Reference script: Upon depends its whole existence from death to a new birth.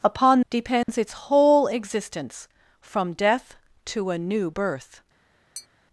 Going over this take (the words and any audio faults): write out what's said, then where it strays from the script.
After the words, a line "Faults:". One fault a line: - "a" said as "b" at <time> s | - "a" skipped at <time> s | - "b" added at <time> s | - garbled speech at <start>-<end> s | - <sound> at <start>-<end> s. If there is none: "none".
Upon depends its whole existence from death to a new birth.
Faults:
- dropout at 0.8-0.9 s
- tap at 5.5-5.7 s